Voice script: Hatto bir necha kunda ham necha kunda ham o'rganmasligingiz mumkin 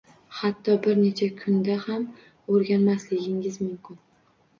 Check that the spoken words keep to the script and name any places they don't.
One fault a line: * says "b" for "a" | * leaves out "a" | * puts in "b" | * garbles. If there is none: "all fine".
* leaves out "necha kunda ham"